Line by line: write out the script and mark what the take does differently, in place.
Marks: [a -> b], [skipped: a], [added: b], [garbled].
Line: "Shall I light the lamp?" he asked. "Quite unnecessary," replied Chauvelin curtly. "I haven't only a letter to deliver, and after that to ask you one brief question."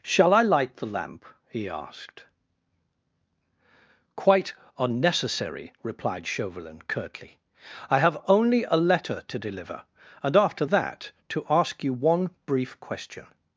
"Shall I light the lamp?" he asked. "Quite unnecessary," replied Chauvelin curtly. "I [haven't -> have] only a letter to deliver, and after that to ask you one brief question."